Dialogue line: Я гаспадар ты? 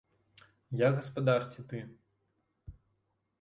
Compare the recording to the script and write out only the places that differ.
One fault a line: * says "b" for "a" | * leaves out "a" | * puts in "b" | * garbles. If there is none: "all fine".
* puts in "ці"